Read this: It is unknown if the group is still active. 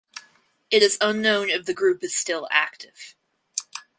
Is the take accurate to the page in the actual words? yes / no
yes